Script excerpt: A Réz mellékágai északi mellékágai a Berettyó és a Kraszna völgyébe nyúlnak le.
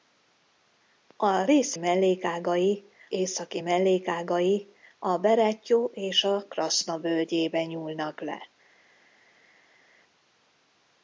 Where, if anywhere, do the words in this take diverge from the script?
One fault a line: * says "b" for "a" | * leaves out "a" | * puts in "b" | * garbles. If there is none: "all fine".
all fine